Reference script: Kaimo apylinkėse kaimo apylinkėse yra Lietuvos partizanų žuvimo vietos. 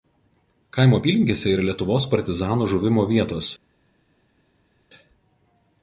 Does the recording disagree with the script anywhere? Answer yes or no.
yes